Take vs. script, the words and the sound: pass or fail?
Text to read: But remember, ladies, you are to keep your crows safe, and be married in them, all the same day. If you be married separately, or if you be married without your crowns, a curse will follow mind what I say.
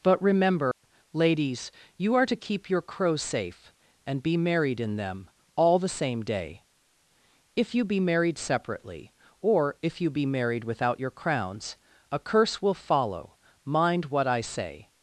fail